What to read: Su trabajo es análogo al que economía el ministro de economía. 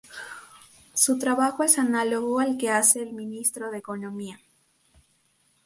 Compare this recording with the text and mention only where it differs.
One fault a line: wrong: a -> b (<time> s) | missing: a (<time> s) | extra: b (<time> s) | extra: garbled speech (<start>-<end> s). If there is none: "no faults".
wrong: economía -> hace (2.7 s)